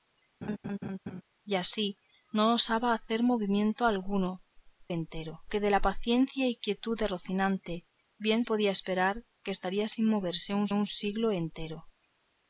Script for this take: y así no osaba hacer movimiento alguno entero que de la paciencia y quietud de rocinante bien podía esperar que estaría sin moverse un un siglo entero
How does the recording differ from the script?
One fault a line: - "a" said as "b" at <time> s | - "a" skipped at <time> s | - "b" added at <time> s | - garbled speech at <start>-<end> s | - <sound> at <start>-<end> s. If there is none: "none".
- laugh at 0.4-1.2 s